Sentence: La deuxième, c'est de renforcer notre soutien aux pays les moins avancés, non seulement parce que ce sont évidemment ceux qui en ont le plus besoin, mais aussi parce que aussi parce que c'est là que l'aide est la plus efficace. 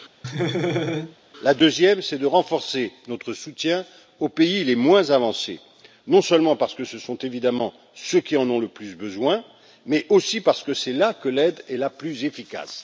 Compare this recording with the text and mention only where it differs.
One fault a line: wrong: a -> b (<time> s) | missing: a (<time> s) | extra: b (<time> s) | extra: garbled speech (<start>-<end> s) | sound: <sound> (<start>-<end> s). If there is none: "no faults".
sound: laugh (0.2-1.2 s)
missing: aussi parce que (10.7 s)